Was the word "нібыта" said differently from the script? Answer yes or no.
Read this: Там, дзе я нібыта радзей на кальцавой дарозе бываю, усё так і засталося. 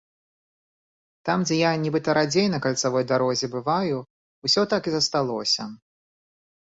no